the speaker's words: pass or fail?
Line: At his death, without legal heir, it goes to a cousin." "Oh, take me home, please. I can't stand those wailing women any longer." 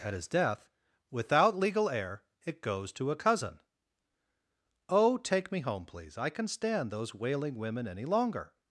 fail